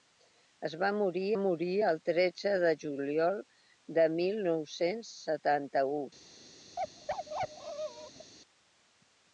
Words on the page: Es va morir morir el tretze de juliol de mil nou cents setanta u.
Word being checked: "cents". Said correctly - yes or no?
yes